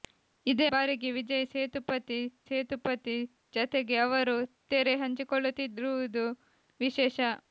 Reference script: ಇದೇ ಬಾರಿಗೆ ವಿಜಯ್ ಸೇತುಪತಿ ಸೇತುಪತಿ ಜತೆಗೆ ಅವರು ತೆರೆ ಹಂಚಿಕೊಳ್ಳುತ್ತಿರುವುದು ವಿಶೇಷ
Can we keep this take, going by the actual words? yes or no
yes